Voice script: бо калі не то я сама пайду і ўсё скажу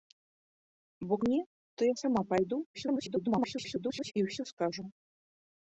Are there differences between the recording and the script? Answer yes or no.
yes